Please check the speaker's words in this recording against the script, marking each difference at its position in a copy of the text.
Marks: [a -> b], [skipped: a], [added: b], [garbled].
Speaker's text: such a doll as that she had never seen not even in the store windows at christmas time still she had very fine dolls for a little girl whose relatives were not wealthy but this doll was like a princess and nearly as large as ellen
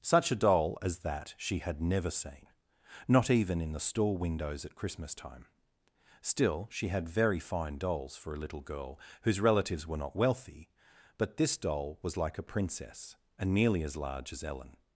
such a doll as that she had never seen not even in the store windows at christmas time still she had very fine dolls for a little girl whose relatives were not wealthy but this doll was like a princess and nearly as large as ellen